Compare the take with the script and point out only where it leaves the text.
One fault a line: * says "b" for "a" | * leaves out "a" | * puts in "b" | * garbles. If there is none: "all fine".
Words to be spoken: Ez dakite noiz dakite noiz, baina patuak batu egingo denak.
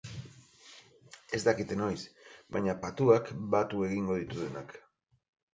* leaves out "dakite noiz"
* puts in "ditu"